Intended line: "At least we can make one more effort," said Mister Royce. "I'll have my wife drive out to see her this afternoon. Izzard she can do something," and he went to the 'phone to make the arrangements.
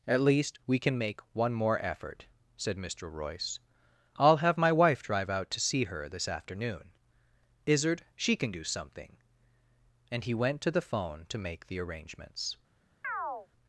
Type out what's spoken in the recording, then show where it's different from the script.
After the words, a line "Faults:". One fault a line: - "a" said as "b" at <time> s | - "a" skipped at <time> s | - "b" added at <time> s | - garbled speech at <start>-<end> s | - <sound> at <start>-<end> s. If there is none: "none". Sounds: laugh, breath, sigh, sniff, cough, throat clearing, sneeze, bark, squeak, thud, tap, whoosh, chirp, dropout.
"At least we can make one more effort," said Mister Royce. "I'll have my wife drive out to see her this afternoon. Izzard she can do something," and he went to the 'phone to make the arrangements.
Faults:
- chirp at 13.0-13.5 s